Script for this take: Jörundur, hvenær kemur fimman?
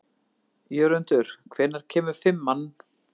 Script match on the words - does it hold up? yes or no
yes